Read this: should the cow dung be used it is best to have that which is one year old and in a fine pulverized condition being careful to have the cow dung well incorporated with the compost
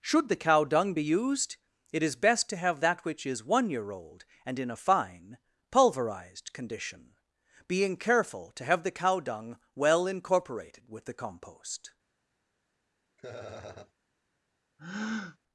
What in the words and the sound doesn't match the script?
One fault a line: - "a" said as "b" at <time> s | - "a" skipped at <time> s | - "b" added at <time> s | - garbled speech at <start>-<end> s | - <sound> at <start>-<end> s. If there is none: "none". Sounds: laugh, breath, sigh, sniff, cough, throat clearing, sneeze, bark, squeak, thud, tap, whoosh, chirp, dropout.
- laugh at 13.2-13.9 s
- breath at 14.8-15.4 s